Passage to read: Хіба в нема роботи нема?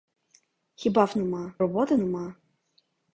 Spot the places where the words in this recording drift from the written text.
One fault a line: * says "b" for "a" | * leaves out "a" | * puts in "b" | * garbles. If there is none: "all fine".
all fine